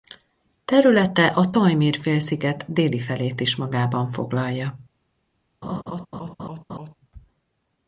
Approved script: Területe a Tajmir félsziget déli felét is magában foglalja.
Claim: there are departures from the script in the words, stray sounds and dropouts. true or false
true